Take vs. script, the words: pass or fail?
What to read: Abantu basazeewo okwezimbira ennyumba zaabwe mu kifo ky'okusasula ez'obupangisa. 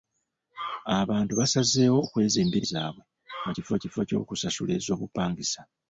fail